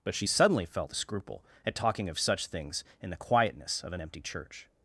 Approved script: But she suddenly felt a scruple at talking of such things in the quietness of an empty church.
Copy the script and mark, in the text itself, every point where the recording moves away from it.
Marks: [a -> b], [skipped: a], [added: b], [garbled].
But she suddenly felt a scruple at talking of such things in the quietness of an empty church.